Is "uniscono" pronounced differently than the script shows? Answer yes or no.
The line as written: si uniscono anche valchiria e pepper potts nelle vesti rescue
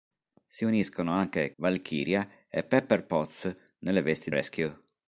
no